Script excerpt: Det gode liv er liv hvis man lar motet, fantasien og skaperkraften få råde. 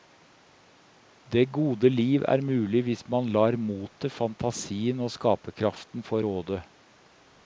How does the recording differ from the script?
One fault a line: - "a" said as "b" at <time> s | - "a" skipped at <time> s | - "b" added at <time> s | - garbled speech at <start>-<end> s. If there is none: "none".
- "liv" said as "mulig" at 2.5 s